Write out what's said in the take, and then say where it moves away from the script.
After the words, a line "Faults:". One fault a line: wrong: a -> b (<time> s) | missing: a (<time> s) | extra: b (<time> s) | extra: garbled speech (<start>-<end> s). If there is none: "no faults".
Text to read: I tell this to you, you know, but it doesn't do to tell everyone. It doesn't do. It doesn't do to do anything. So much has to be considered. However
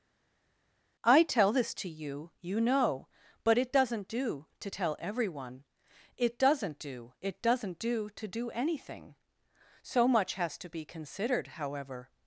I tell this to you, you know, but it doesn't do to tell everyone. It doesn't do. It doesn't do to do anything. So much has to be considered. However
Faults:
no faults